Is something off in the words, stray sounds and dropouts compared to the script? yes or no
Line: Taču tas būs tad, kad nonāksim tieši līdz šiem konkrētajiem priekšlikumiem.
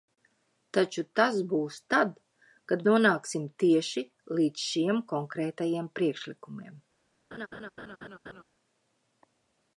yes